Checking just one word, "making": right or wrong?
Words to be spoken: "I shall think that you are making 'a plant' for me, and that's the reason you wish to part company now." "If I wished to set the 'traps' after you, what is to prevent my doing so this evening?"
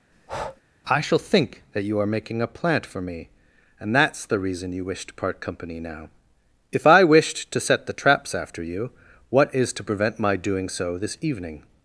right